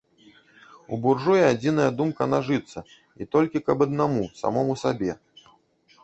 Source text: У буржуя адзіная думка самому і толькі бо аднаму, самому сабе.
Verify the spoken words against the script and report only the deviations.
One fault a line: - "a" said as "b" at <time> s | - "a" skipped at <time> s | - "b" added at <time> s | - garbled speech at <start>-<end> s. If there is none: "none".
- "самому" said as "нажыцца" at 2.3 s
- "бо" said as "каб" at 3.7 s